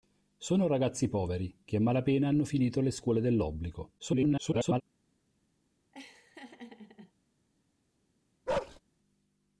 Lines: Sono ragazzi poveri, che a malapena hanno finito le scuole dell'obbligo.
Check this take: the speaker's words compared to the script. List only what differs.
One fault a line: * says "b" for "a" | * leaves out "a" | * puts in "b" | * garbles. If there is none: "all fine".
* garbles